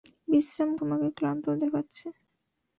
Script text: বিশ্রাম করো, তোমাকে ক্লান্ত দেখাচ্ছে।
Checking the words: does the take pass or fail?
fail